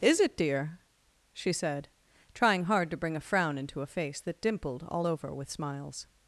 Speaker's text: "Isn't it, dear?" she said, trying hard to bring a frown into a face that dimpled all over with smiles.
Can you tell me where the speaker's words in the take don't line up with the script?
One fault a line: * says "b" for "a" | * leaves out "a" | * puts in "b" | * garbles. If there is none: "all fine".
* says "Is" for "Isn't"